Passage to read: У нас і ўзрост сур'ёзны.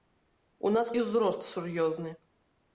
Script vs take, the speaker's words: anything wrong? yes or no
no